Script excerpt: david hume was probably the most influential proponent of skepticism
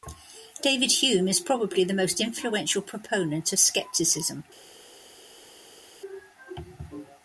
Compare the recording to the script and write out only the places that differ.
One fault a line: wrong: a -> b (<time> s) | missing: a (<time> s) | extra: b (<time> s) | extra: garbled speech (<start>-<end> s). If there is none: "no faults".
wrong: was -> is (1.3 s)